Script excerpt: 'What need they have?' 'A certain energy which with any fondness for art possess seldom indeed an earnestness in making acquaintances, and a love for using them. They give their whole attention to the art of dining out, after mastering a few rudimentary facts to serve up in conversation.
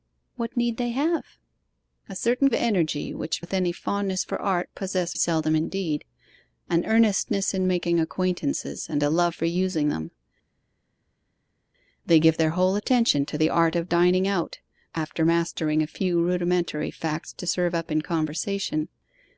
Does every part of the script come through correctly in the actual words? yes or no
yes